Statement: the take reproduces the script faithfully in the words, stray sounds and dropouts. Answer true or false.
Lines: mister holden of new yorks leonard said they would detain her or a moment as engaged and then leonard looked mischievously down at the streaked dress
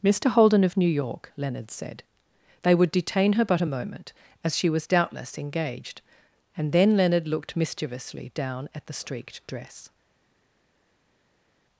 false